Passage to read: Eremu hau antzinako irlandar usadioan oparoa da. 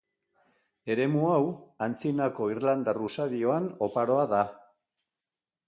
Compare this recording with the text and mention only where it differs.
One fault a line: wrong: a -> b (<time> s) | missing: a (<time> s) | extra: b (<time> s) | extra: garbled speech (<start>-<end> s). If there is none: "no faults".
no faults